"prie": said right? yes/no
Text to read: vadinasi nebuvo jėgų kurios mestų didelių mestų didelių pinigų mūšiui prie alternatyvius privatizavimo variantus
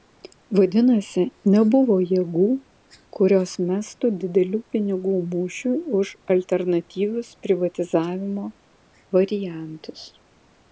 no